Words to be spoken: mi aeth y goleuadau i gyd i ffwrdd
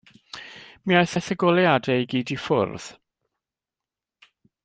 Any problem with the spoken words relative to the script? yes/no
yes